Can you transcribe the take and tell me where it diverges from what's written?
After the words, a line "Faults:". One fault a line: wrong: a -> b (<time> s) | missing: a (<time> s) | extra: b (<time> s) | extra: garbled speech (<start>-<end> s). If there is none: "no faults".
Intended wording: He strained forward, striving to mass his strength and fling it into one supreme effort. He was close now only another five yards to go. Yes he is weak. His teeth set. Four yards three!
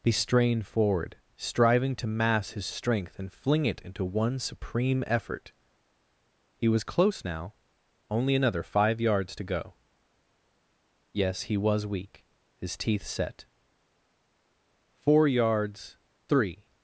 He strained forward, striving to mass his strength and fling it into one supreme effort. He was close now only another five yards to go. Yes he was weak. His teeth set. Four yards three!
Faults:
wrong: is -> was (11.6 s)